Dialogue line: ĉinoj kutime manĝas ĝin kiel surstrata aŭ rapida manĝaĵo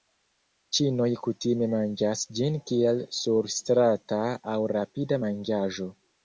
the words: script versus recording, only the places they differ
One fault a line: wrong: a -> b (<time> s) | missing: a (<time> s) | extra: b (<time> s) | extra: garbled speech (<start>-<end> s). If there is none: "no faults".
no faults